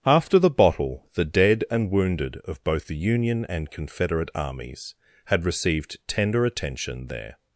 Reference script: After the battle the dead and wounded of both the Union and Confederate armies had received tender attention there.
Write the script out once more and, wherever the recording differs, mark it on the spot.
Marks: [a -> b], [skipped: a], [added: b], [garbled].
After the [battle -> bottle] the dead and wounded of both the Union and Confederate armies had received tender attention there.